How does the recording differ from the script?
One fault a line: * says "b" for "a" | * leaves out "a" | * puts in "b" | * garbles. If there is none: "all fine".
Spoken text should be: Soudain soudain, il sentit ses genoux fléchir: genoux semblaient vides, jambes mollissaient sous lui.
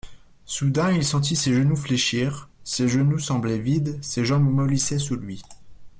* leaves out "soudain"
* puts in "ses"
* puts in "ses"